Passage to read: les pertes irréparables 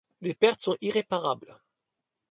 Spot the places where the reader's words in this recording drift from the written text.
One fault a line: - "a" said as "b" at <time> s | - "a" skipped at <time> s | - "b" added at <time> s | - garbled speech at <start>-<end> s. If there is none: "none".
- "sont" added at 0.6 s